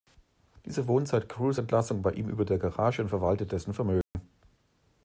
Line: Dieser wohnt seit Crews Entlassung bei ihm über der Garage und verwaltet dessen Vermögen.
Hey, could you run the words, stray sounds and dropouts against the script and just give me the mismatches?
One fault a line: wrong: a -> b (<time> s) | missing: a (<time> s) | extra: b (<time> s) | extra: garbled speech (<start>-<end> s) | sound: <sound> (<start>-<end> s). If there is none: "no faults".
sound: dropout (4.0-4.1 s)